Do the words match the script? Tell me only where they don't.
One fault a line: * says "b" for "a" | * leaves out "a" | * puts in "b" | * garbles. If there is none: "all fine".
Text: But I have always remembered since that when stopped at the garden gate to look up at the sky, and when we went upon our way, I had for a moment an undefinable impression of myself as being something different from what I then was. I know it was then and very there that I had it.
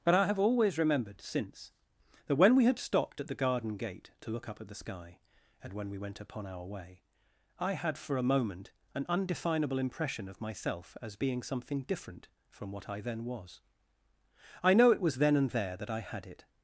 * puts in "we had"
* leaves out "very"